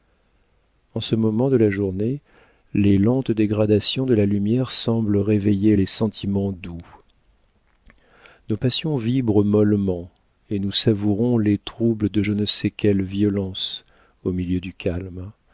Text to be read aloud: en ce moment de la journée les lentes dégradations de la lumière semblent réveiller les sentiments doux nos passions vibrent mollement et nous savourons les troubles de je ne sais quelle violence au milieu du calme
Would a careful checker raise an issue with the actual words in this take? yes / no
no